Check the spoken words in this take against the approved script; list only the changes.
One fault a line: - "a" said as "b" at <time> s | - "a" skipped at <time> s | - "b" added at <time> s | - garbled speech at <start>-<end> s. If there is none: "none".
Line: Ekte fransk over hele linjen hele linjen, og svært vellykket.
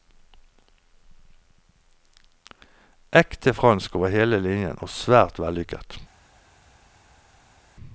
- "hele linjen" skipped at 4.8 s